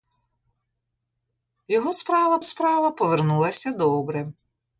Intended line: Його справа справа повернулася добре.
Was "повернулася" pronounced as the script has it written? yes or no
yes